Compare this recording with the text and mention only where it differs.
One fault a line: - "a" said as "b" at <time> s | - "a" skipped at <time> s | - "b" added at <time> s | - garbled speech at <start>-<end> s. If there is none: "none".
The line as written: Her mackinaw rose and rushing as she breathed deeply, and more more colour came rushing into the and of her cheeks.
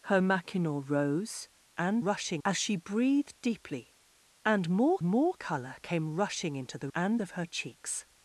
none